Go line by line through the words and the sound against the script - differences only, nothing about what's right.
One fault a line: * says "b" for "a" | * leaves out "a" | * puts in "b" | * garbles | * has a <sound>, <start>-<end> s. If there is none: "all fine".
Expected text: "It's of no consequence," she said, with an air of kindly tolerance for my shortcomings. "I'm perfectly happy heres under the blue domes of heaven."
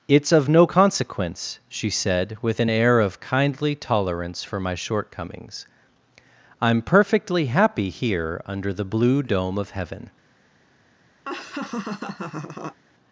* says "here" for "heres"
* says "dome" for "domes"
* has a laugh, 11.2-12.8 s